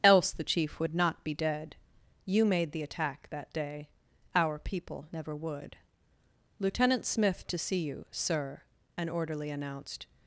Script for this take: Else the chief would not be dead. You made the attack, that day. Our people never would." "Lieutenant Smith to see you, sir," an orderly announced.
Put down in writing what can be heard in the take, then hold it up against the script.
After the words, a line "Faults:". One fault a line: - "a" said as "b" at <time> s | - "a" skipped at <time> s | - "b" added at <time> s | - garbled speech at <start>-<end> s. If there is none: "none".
Else the chief would not be dead. You made the attack, that day. Our people never would." "Lieutenant Smith to see you, sir," an orderly announced.
Faults:
none